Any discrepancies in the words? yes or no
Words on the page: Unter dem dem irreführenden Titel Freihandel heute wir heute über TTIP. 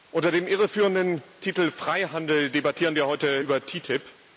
yes